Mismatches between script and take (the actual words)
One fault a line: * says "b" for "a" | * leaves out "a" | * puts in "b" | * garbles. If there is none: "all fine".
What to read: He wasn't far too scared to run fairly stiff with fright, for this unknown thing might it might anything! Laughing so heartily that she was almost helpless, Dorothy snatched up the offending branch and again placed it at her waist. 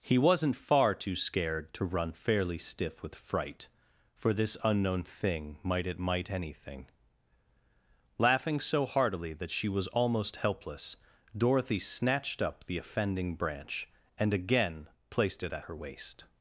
all fine